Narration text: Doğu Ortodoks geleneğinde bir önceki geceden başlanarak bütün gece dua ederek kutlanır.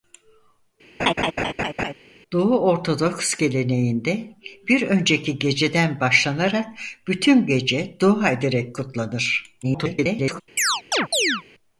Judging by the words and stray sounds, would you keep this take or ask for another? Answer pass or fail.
fail